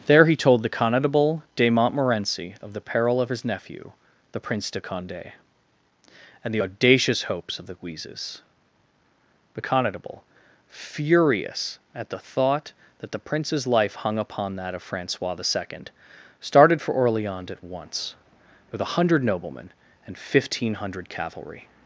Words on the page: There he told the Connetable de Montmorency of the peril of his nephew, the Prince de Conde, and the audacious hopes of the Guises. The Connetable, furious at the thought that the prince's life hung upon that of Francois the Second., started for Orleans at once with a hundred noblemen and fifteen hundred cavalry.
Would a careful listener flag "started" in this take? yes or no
no